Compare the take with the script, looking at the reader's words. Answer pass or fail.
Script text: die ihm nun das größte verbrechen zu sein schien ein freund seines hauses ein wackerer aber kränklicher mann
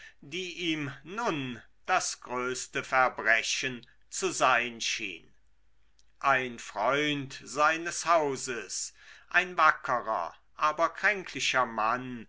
pass